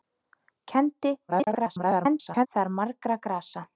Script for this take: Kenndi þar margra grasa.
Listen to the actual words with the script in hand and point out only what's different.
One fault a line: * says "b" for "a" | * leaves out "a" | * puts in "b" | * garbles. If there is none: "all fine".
* garbles